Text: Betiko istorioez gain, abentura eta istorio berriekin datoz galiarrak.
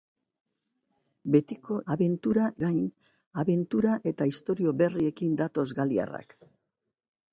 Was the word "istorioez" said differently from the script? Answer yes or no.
yes